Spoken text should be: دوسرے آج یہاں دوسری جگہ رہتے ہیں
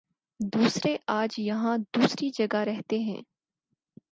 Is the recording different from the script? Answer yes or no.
no